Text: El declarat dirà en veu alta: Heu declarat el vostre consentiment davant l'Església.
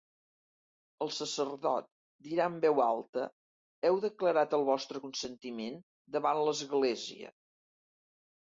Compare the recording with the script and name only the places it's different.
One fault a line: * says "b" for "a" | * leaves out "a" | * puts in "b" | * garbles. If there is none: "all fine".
* says "sacerdot" for "declarat"